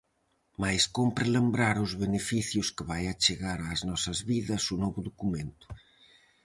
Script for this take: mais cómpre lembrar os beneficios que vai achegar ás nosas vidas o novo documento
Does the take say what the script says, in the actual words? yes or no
yes